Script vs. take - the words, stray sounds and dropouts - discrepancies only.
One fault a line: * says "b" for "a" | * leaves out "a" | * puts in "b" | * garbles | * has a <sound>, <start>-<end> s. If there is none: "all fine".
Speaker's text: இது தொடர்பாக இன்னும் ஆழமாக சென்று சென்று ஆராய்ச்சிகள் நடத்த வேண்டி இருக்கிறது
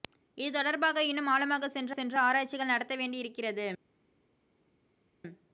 all fine